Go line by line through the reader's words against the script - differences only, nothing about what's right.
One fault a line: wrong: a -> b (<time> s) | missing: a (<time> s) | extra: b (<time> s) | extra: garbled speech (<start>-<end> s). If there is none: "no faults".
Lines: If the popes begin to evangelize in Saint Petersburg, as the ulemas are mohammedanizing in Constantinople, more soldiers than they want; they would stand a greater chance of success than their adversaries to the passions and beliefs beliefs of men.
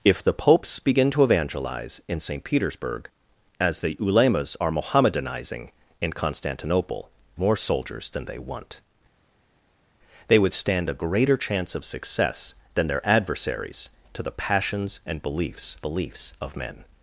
no faults